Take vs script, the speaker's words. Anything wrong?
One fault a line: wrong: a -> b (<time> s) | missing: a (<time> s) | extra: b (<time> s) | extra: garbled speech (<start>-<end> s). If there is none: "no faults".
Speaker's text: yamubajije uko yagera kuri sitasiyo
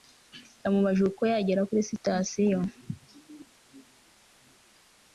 no faults